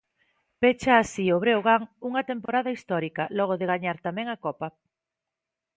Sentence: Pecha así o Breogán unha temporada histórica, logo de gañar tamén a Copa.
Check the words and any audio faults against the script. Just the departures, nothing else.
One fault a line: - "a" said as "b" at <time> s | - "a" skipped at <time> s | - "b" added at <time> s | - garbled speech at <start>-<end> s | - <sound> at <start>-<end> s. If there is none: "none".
- dropout at 2.5-2.5 s